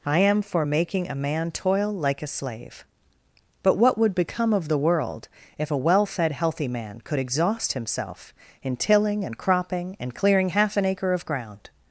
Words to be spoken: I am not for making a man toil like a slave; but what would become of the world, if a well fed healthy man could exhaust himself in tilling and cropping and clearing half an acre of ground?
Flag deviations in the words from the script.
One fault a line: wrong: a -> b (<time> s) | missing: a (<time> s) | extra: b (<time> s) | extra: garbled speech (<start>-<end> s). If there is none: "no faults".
missing: not (0.4 s)